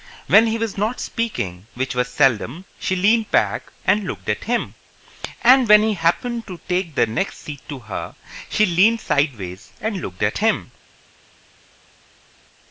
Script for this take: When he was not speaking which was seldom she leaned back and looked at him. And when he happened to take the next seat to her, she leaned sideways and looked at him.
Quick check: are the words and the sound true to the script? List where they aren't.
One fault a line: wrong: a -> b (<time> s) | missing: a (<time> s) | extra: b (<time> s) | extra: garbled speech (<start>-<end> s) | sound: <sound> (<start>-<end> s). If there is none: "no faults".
no faults